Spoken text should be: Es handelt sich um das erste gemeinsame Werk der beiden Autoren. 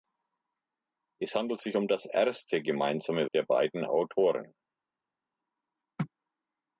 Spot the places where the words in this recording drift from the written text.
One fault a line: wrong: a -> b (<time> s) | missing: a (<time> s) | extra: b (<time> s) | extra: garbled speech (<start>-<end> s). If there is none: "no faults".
missing: Werk (3.3 s)